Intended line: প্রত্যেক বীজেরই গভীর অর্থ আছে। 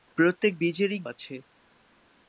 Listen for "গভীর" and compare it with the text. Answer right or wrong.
wrong